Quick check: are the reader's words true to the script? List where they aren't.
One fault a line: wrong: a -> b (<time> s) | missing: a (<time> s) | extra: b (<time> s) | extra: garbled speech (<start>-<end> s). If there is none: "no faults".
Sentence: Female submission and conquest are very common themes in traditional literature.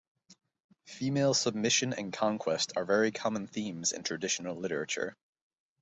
no faults